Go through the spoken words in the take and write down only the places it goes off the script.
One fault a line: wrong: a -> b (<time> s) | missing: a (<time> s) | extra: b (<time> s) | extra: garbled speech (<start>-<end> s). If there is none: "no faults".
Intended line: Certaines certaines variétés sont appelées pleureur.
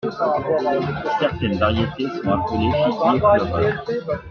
missing: certaines (1.6 s)
extra: figuier (2.7 s)